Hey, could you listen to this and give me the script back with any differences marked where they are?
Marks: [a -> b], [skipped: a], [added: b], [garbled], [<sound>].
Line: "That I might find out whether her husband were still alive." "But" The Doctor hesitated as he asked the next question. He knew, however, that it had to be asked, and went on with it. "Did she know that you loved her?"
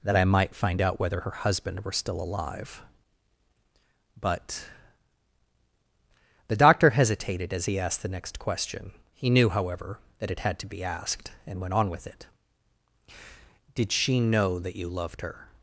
"That I might find out whether her husband were still alive." "But" The Doctor hesitated as he asked the next question. He knew, however, that it had to be asked, and went on with it. "Did she know that you loved her?"